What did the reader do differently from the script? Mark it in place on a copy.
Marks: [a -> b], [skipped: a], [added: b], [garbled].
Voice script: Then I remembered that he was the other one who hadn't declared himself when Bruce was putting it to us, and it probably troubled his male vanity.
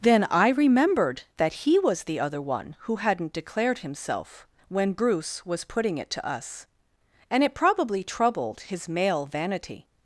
Then I remembered that he was the other one who hadn't declared himself when Bruce was putting it to us, and it probably troubled his male vanity.